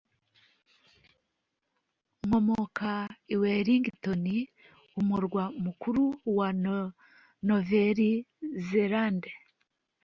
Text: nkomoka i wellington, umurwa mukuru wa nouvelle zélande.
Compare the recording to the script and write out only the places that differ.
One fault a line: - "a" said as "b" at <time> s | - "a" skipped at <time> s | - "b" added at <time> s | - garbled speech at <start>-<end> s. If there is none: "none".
none